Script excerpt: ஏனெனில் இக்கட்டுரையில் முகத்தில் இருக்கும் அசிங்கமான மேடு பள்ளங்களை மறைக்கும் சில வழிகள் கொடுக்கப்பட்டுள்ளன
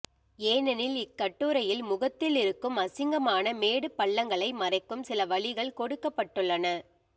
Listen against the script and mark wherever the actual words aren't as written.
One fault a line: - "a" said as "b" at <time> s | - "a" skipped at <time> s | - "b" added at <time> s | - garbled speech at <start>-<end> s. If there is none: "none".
none